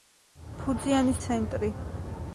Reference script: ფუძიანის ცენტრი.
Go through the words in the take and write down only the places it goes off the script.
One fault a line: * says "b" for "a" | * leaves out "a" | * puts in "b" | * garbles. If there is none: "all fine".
all fine